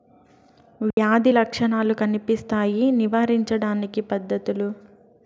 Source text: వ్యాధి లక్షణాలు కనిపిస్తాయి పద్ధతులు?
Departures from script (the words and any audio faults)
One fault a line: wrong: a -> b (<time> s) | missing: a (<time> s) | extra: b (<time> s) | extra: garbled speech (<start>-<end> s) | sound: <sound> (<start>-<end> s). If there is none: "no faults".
sound: dropout (0.9-1.0 s)
extra: నివారించడానికి (2.9 s)